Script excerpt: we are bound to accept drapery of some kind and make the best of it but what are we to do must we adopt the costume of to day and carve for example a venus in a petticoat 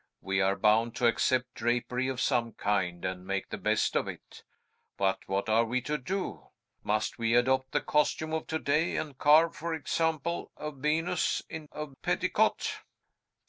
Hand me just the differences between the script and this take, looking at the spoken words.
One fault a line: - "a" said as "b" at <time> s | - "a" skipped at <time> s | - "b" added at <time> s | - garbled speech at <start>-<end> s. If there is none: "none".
none